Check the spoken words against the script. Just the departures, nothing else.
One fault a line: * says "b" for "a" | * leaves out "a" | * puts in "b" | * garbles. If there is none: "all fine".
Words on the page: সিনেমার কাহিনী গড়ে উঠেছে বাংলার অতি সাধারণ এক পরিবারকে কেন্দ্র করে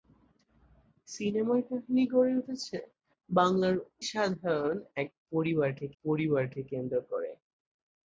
* leaves out "অতি"
* puts in "পরিবারকে"